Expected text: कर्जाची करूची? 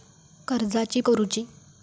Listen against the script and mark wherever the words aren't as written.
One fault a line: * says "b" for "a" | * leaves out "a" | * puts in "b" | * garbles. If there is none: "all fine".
all fine